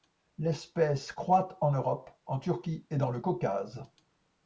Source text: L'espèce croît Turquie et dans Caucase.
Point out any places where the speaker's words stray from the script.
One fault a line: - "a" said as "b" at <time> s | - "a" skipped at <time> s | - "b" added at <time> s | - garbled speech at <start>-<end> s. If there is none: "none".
- "en Europe en" added at 1.6 s
- "le" added at 3.1 s